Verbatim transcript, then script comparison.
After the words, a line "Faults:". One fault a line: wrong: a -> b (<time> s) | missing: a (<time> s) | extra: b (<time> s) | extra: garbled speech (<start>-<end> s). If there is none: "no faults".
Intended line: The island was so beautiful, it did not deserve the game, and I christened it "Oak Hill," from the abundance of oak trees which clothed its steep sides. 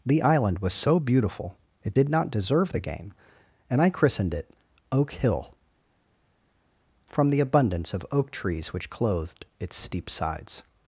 The island was so beautiful, it did not deserve the game, and I christened it "Oak Hill," from the abundance of oak trees which clothed its steep sides.
Faults:
no faults